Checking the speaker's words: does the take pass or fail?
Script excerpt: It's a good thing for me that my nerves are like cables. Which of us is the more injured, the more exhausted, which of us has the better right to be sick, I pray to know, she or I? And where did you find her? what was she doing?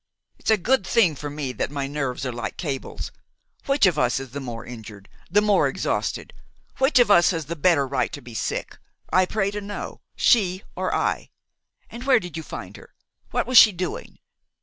pass